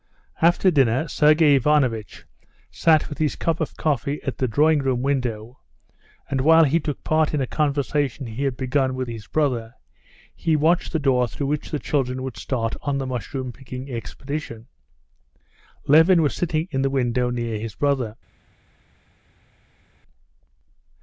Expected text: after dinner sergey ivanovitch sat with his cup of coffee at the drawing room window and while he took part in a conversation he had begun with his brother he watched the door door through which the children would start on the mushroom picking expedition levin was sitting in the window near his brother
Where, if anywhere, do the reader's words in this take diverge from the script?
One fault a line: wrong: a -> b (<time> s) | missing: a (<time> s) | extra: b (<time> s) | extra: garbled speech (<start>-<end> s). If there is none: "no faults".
missing: door (11.3 s)